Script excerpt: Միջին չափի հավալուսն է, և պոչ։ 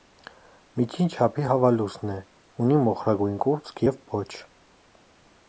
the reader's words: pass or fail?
fail